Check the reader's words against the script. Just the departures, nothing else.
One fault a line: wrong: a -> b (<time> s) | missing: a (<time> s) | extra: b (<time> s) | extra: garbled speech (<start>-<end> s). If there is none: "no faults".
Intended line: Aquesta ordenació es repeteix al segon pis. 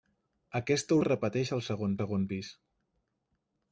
missing: ordenació (1.0 s)
extra: segon (2.0 s)